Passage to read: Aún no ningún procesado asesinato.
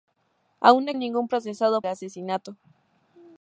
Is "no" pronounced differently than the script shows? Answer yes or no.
no